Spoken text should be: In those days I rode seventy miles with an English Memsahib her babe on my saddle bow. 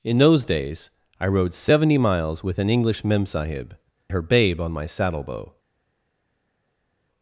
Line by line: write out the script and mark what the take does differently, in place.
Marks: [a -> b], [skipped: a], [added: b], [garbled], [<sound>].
In those days I rode seventy miles with an English Memsahib her babe on my saddle bow.